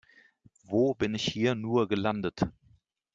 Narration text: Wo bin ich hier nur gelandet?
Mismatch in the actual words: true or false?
false